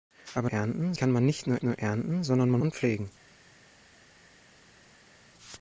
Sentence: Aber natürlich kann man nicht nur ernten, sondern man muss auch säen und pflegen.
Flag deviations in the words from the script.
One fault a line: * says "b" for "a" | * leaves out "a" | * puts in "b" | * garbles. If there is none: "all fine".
* says "ernten" for "natürlich"
* puts in "nur"
* leaves out "muss auch säen"